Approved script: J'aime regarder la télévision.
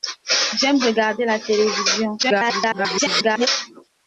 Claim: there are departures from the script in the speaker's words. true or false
true